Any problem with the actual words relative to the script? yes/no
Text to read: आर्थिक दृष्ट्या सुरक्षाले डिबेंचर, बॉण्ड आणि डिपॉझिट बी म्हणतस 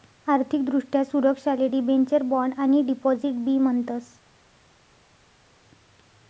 no